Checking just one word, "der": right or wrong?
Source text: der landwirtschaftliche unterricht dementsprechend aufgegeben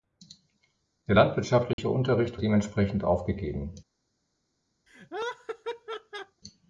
right